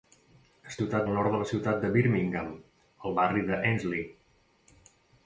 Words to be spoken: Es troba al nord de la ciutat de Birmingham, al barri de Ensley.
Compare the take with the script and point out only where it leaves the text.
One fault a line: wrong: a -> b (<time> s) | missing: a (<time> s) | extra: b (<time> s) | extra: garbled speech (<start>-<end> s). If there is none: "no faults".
wrong: troba -> ciutat (0.8 s)